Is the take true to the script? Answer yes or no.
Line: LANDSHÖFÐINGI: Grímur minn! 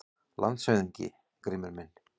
yes